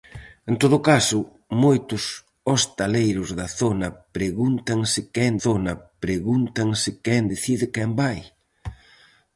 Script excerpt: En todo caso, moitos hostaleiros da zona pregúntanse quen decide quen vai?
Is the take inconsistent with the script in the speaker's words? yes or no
yes